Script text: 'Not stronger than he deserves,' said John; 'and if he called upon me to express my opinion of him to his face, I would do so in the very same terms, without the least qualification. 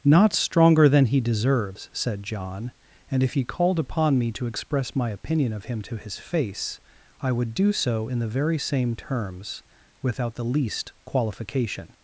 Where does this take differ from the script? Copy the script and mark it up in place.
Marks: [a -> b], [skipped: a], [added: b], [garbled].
'Not stronger than he deserves,' said John; 'and if he called upon me to express my opinion of him to his face, I would do so in the very same terms, without the least qualification.